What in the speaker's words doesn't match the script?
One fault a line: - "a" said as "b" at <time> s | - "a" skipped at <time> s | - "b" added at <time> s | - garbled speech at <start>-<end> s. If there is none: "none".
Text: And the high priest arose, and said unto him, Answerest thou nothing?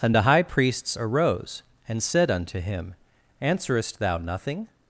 - "priest" said as "priests" at 0.4 s